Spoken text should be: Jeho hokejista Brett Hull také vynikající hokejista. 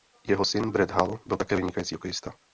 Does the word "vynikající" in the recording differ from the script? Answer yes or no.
no